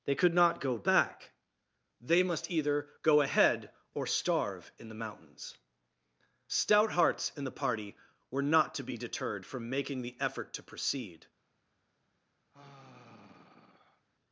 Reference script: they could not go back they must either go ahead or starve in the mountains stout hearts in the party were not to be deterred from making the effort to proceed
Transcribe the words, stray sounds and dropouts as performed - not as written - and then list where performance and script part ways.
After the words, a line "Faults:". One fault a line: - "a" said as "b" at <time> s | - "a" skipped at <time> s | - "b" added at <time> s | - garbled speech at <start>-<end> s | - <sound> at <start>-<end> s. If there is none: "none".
they could not go back they must either go ahead or starve in the mountains stout hearts in the party were not to be deterred from making the effort to proceed
Faults:
- sigh at 12.5-14.1 s